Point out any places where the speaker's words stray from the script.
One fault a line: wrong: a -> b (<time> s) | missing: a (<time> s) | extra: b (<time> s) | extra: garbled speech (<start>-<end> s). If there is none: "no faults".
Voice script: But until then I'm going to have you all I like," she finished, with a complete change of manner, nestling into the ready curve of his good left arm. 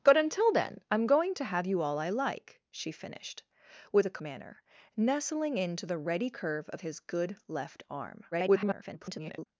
missing: complete change of (4.2 s)
extra: garbled speech (8.3-9.5 s)